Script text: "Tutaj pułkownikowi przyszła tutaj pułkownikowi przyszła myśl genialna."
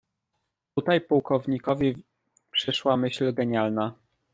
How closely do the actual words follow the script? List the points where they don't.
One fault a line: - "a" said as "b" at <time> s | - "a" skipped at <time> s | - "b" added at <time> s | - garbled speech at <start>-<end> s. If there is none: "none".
- "tutaj pułkownikowi przyszła" skipped at 3.0 s